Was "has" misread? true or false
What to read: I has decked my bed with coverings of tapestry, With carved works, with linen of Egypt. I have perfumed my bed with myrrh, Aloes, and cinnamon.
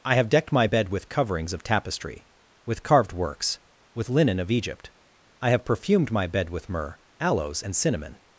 true